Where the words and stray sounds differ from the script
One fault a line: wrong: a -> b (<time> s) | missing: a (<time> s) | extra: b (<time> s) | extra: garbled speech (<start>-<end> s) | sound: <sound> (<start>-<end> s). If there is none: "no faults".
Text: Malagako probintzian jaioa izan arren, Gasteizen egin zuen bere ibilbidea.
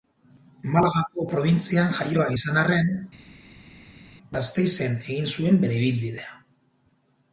no faults